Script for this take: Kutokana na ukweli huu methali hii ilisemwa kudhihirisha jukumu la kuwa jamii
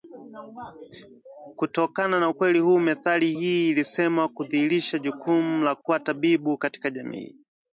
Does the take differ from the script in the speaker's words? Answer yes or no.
yes